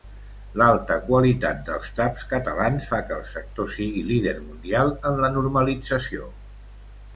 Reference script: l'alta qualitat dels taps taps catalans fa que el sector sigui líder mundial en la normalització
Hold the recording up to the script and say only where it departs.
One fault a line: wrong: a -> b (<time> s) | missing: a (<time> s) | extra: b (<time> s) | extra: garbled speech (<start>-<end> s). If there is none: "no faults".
missing: taps (2.2 s)